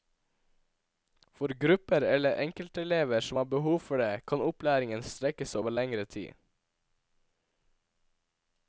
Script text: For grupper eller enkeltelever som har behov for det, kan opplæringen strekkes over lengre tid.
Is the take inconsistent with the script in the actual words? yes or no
no